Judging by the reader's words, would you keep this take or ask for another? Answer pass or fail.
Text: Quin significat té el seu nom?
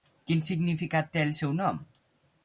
pass